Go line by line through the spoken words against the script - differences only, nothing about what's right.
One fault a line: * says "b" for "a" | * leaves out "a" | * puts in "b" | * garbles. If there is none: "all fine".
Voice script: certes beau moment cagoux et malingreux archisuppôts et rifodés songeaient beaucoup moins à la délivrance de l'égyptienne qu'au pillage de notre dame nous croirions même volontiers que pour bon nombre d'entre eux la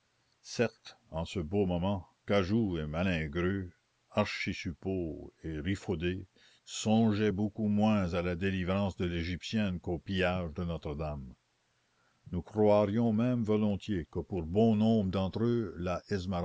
* puts in "en ce"